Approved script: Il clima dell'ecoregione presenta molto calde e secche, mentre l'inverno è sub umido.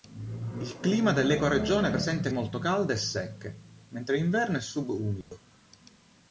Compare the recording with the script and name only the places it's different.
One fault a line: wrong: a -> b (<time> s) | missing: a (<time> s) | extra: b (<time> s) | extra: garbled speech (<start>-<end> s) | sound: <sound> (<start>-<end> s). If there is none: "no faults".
sound: dropout (5.2-5.3 s)